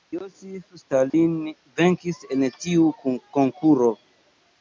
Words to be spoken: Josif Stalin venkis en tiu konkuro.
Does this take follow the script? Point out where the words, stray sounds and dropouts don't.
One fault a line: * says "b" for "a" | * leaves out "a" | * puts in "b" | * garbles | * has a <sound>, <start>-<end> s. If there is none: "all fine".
* has a dropout, 1.1-1.1 s